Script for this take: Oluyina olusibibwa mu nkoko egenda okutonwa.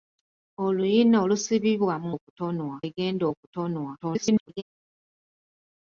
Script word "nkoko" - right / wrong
wrong